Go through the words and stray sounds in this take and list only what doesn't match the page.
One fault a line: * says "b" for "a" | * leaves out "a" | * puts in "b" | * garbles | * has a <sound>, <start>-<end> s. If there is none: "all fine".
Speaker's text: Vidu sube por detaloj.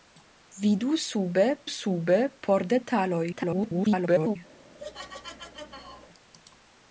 * puts in "sube"
* garbles
* has a laugh, 4.8-6.1 s